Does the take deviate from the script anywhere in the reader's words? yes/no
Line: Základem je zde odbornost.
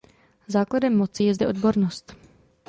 yes